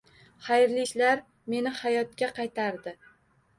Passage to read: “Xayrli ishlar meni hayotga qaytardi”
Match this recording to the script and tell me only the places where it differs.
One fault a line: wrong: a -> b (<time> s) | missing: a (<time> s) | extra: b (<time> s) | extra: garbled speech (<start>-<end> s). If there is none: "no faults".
no faults